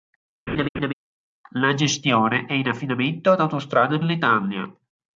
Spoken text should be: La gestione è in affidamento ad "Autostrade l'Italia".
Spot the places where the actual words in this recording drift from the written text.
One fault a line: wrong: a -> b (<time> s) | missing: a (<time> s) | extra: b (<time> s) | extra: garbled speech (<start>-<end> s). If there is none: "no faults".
no faults